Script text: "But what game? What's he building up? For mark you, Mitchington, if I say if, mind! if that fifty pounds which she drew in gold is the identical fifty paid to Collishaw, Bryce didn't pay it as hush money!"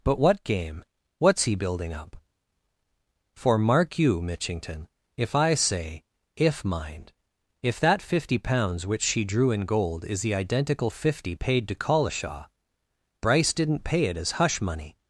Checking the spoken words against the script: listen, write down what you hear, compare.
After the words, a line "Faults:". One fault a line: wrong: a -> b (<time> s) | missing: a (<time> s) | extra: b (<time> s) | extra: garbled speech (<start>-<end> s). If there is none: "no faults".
"But what game? What's he building up? For mark you, Mitchington, if I say if, mind! if that fifty pounds which she drew in gold is the identical fifty paid to Collishaw, Bryce didn't pay it as hush money!"
Faults:
no faults